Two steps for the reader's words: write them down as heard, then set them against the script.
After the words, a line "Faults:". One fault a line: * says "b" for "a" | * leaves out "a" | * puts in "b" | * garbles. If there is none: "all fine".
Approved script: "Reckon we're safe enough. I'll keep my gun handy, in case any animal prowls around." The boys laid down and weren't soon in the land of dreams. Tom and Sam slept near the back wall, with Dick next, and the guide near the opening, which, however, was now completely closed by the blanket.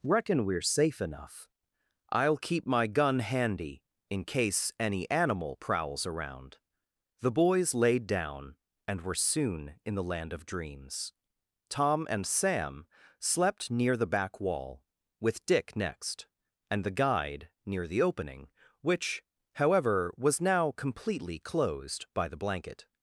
"Reckon we're safe enough. I'll keep my gun handy, in case any animal prowls around." The boys laid down and were soon in the land of dreams. Tom and Sam slept near the back wall, with Dick next, and the guide near the opening, which, however, was now completely closed by the blanket.
Faults:
* says "were" for "weren't"